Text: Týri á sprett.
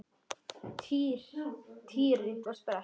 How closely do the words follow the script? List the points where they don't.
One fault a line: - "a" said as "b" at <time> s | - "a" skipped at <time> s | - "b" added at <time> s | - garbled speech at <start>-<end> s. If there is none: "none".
none